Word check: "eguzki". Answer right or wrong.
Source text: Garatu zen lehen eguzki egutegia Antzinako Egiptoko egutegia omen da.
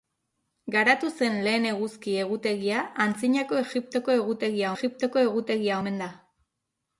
right